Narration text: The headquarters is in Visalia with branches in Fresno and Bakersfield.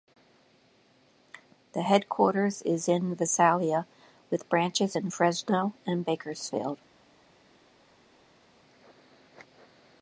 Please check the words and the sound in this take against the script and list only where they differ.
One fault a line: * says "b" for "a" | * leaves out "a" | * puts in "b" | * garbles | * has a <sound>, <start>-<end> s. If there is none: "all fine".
all fine